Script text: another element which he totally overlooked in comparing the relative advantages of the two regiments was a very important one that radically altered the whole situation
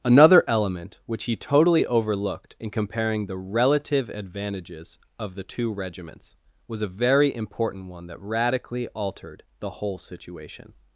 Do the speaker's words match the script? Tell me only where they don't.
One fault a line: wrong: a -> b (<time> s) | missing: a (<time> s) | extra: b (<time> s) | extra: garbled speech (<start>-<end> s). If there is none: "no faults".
no faults